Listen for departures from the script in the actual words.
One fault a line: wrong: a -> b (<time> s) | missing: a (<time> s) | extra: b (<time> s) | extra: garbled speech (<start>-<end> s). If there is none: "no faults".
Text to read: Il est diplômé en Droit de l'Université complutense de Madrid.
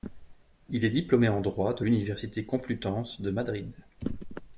no faults